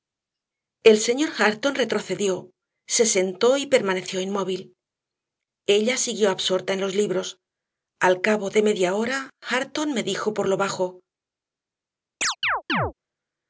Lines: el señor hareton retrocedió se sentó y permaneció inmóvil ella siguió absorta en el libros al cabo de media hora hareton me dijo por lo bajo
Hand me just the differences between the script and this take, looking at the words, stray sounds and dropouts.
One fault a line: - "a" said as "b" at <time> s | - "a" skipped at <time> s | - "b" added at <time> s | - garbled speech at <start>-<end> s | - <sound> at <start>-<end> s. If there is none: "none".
- "el" said as "los" at 6.8 s
- chirp at 12.2-12.9 s